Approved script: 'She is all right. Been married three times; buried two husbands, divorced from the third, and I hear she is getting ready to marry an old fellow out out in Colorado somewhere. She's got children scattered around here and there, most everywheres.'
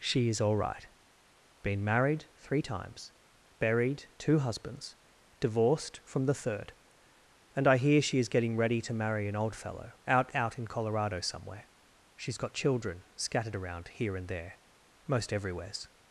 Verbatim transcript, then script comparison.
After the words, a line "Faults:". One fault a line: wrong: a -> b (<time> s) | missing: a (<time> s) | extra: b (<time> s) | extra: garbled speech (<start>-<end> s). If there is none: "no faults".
'She is all right. Been married three times; buried two husbands, divorced from the third, and I hear she is getting ready to marry an old fellow out out in Colorado somewhere. She's got children scattered around here and there, most everywheres.'
Faults:
no faults